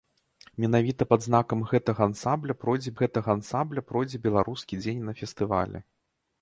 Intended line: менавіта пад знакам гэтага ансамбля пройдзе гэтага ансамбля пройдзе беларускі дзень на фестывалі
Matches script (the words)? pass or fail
pass